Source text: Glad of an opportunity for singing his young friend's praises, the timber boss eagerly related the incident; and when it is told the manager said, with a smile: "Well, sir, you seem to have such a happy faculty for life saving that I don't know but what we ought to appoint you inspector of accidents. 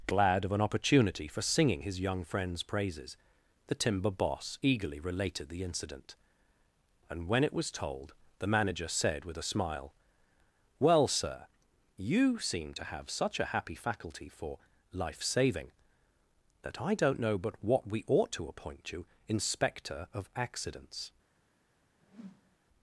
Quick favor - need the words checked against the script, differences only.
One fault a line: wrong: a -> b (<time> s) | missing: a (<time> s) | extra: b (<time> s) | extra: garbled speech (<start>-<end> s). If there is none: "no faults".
wrong: is -> was (7.5 s)